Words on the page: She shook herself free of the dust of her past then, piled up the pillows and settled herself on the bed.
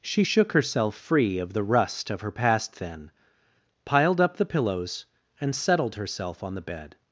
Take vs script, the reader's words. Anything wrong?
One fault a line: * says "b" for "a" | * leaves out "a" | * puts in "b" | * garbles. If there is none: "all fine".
* says "rust" for "dust"